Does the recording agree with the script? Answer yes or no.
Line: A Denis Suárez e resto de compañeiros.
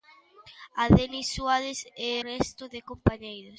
yes